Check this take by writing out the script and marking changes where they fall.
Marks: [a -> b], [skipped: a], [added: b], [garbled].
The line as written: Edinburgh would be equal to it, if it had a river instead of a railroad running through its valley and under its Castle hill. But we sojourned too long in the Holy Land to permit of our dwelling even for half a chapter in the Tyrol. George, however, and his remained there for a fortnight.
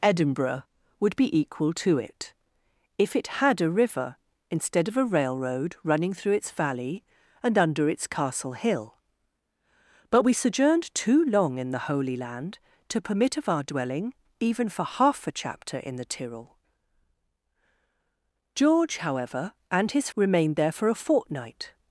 Edinburgh would be equal to it, if it had a river instead of a railroad running through its valley and under its Castle hill. But we sojourned too long in the Holy Land to permit of our dwelling even for half a chapter in the Tyrol. George, however, and his remained there for a fortnight.